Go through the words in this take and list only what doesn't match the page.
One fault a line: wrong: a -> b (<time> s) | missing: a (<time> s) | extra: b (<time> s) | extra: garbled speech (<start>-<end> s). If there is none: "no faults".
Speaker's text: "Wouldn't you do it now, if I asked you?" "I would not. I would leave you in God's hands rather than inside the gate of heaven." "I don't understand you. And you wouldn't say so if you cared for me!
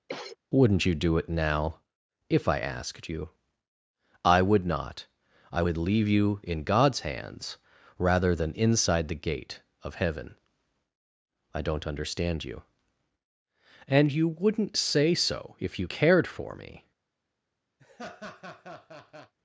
no faults